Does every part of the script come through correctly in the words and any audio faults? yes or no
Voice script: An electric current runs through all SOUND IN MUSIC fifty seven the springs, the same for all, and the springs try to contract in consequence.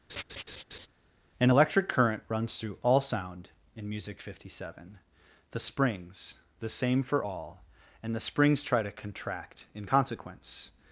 no